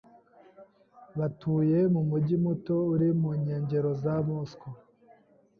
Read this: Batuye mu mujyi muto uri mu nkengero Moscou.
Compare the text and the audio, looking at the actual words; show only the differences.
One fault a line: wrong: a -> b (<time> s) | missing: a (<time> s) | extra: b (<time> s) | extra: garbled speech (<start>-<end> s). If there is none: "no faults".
extra: za (4.0 s)